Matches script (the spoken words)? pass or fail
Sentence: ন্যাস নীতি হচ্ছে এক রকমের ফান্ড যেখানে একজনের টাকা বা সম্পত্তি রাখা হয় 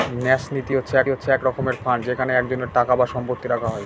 fail